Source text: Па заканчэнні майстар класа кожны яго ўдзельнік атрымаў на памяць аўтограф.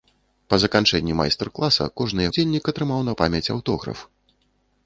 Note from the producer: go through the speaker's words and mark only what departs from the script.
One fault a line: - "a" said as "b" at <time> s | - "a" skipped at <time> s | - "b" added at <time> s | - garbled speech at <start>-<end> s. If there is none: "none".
- "яго" skipped at 2.3 s